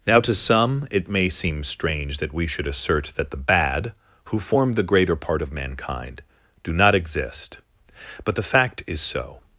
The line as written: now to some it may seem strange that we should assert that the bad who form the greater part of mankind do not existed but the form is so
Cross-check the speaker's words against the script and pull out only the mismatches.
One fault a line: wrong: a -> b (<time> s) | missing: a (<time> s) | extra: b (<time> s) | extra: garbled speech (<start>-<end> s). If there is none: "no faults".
wrong: existed -> exist (7.0 s)
wrong: form -> fact (8.5 s)